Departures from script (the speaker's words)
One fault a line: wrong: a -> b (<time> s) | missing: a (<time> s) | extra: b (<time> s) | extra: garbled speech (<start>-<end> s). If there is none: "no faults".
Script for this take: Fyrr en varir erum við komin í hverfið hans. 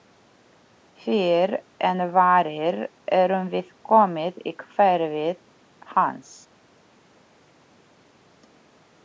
no faults